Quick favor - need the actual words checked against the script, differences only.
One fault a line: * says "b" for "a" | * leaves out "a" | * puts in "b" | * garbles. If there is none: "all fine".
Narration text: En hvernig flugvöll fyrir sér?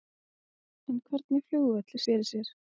all fine